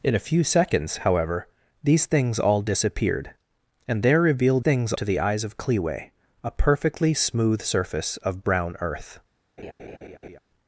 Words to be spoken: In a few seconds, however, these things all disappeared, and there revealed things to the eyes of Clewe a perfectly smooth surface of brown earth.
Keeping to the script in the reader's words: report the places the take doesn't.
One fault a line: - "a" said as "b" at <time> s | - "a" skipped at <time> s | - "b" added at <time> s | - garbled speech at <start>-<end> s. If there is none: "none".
none